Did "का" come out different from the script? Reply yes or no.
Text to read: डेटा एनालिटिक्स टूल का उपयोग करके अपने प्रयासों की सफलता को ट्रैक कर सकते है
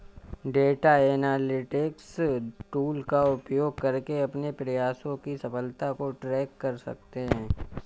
no